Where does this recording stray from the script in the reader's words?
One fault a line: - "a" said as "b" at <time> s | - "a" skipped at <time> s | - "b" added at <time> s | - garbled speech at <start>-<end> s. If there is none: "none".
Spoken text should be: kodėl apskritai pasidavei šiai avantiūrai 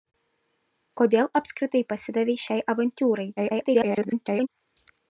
- garbled speech at 3.4-4.5 s